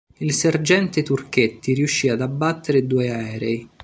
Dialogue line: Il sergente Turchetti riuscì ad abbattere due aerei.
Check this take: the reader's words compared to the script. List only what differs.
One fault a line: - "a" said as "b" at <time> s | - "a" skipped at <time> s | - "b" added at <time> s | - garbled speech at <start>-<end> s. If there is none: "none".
none